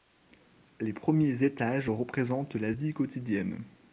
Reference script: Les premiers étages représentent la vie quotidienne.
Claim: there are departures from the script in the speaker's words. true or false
false